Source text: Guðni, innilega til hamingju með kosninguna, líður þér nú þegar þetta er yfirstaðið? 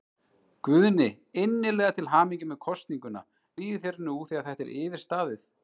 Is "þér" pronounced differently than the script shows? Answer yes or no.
no